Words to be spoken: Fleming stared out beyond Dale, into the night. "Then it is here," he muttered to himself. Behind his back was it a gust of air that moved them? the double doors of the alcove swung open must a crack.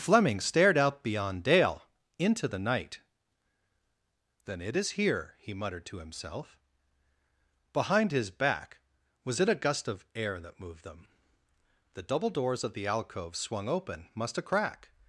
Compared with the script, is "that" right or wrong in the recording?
right